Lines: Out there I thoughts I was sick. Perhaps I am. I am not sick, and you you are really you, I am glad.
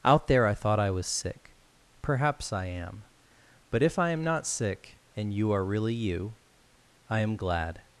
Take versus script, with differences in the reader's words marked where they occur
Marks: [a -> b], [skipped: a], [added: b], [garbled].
Out there I [thoughts -> thought] I was sick. Perhaps I am. [added: But if] I am not sick, and you [skipped: you] are really you, I am glad.